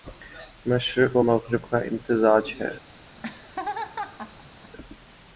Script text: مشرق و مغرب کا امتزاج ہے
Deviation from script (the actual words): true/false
false